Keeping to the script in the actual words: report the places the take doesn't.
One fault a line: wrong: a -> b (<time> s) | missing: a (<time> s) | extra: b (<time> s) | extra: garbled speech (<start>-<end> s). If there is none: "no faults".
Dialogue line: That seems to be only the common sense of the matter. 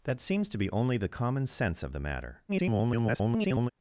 extra: garbled speech (2.5-3.7 s)